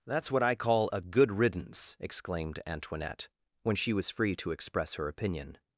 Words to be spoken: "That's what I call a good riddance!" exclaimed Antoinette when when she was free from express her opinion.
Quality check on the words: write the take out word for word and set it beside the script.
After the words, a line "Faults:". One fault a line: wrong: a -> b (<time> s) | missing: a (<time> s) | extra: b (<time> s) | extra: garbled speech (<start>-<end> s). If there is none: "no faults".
"That's what I call a good riddance!" exclaimed Antoinette when she was free to express her opinion.
Faults:
missing: when (3.7 s)
wrong: from -> to (4.4 s)